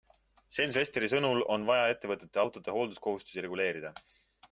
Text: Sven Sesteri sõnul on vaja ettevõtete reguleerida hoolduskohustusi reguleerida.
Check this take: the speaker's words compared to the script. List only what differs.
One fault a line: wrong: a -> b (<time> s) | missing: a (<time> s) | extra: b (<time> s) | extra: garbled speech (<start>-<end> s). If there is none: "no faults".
wrong: reguleerida -> autode (2.4 s)